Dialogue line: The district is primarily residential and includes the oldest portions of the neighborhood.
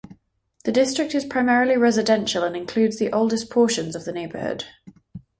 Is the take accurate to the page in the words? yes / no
yes